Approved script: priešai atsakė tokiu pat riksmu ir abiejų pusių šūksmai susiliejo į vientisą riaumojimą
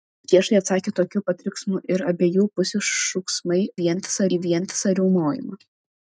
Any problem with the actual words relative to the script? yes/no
yes